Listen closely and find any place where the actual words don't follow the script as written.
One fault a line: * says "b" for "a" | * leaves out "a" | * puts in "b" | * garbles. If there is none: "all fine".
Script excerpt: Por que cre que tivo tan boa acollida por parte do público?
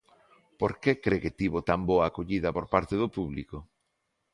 all fine